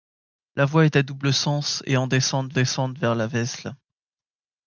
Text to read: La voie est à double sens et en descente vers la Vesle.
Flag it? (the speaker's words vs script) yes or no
yes